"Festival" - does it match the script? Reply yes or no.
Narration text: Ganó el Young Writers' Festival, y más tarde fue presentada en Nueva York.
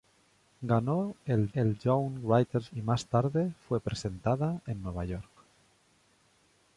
no